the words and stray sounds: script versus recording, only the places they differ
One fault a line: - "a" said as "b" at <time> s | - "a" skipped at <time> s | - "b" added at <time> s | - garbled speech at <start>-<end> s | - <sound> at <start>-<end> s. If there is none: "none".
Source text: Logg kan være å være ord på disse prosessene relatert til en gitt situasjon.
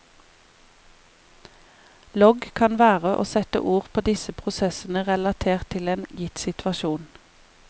- "være" said as "sette" at 3.3 s